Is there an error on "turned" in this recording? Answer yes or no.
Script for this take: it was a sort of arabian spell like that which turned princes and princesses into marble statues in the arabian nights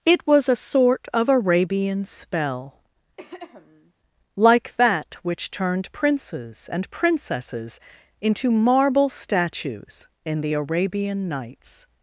no